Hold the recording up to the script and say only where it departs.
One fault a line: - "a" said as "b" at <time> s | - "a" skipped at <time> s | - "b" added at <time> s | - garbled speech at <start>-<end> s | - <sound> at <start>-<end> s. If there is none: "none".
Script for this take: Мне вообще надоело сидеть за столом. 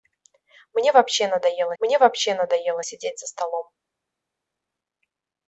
- "мне вообще надоело" added at 1.8 s